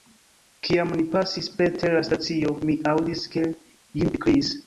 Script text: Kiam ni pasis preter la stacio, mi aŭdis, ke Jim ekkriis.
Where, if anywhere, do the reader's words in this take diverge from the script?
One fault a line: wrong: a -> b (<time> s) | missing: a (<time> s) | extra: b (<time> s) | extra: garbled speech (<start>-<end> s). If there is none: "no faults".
no faults